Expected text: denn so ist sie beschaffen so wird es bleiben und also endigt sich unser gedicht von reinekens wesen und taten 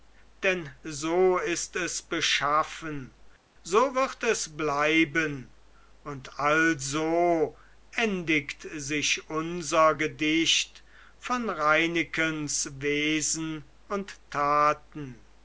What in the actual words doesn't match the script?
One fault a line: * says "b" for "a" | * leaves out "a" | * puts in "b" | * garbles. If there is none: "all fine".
* says "es" for "sie"